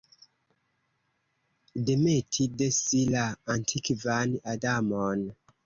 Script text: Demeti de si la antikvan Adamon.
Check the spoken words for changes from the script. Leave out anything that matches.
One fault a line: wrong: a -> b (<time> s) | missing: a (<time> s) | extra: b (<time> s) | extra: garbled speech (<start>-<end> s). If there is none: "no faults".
no faults